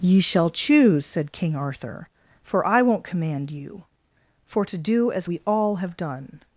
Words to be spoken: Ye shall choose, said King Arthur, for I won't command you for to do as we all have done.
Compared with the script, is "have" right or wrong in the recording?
right